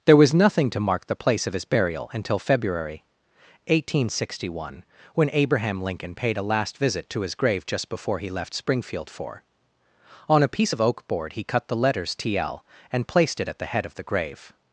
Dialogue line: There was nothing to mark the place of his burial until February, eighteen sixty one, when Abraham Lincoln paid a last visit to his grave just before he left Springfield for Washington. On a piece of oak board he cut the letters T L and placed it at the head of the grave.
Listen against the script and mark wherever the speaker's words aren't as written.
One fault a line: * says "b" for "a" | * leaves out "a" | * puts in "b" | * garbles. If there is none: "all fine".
* leaves out "Washington"